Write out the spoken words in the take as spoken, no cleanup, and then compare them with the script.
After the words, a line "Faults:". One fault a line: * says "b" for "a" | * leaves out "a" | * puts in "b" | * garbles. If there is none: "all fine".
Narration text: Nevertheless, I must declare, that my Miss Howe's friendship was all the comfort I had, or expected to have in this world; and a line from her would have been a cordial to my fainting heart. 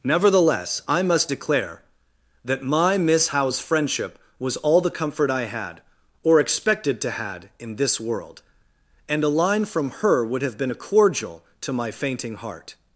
Nevertheless, I must declare, that my Miss Howe's friendship was all the comfort I had, or expected to had in this world; and a line from her would have been a cordial to my fainting heart.
Faults:
* says "had" for "have"